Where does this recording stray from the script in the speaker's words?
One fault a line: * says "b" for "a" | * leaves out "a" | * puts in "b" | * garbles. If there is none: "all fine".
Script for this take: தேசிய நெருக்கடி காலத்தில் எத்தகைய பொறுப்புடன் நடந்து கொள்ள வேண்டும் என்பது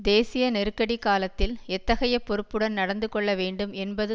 all fine